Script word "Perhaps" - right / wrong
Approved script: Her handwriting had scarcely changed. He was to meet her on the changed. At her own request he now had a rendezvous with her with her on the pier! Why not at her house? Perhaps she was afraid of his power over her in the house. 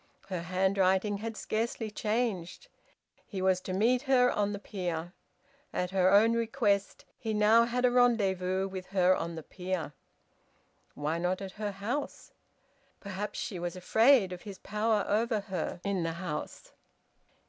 right